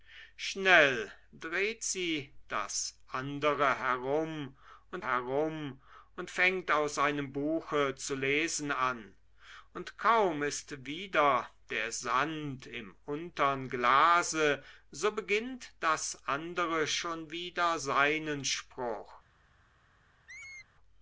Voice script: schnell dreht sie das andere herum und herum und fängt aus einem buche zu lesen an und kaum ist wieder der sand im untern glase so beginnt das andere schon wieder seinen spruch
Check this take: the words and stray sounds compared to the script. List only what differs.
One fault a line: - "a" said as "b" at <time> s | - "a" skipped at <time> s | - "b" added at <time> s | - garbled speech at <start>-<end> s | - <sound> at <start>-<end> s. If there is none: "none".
- squeak at 20.3-20.7 s